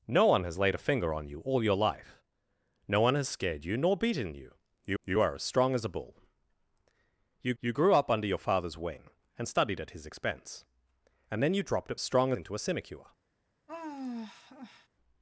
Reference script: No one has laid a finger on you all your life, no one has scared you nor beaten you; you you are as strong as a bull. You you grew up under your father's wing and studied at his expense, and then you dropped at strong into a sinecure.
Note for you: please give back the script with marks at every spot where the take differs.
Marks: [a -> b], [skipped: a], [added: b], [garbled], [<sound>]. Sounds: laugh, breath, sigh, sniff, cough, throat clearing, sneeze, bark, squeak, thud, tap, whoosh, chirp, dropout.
No one has laid a finger on you all your life, no one has scared you nor beaten you; you you are as strong as a bull. You you grew up under your father's wing and studied at his expense, and then you dropped at strong into a sinecure. [sigh]